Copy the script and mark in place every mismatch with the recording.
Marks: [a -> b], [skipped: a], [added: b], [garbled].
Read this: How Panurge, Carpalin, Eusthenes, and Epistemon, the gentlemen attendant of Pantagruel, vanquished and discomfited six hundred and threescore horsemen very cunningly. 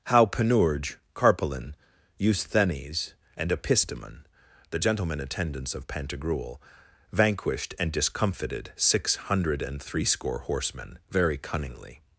How Panurge, Carpalin, Eusthenes, and Epistemon, the gentlemen [attendant -> attendants] of Pantagruel, vanquished and discomfited six hundred and threescore horsemen very cunningly.